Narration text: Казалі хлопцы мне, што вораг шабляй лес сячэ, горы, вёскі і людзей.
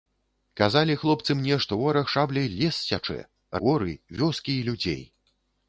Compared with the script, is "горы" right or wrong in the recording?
right